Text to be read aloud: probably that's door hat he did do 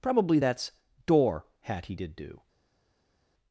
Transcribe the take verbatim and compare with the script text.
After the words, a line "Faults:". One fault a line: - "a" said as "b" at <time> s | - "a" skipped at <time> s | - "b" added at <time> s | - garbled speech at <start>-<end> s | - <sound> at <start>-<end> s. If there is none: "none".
probably that's door hat he did do
Faults:
none